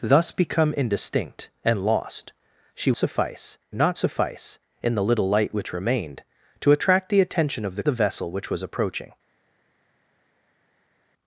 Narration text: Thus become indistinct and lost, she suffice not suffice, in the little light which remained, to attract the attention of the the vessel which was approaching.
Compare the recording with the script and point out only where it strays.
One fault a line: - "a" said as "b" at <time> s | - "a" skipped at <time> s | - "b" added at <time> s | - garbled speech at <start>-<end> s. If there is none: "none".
none